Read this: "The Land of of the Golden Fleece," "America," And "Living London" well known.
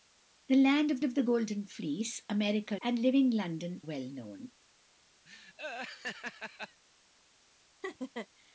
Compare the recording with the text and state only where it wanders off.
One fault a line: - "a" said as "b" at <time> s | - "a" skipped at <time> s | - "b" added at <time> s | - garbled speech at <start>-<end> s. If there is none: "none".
none